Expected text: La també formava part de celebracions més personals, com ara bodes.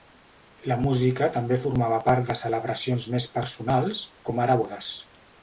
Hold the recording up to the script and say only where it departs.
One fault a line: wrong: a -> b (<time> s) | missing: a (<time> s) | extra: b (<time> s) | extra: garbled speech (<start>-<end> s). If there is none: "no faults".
extra: música (0.8 s)